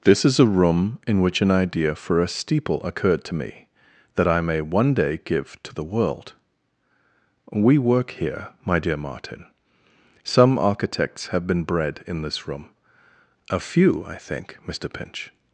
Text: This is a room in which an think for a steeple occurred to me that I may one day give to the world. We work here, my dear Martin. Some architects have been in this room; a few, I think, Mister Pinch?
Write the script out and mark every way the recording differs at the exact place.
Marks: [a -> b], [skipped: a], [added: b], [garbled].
This is a room in which an [think -> idea] for a steeple occurred to me that I may one day give to the world. We work here, my dear Martin. Some architects have been [added: bred] in this room; a few, I think, Mister Pinch?